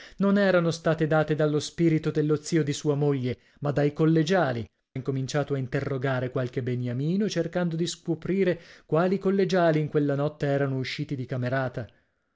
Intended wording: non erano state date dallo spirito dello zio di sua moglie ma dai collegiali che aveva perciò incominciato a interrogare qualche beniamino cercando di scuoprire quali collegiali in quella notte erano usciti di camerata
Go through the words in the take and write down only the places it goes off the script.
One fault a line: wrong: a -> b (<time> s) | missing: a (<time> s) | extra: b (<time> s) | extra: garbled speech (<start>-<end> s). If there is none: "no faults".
missing: che aveva perciò (4.7 s)